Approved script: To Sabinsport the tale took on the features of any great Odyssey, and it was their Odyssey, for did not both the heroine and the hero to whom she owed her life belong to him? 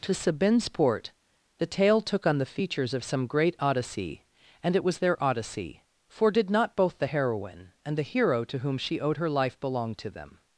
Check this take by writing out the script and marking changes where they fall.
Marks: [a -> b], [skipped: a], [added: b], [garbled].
To Sabinsport the tale took on the features of [any -> some] great Odyssey, and it was their Odyssey, for did not both the heroine and the hero to whom she owed her life belong to [him? -> them]